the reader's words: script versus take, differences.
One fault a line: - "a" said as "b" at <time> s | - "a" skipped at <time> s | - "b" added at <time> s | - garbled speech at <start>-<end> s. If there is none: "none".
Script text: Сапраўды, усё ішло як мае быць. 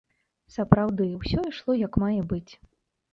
none